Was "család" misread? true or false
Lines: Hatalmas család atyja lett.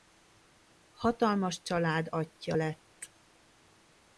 false